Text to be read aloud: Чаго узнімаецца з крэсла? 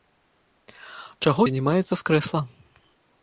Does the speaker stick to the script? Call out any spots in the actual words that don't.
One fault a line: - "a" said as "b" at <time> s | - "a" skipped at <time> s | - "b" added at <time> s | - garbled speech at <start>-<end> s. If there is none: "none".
none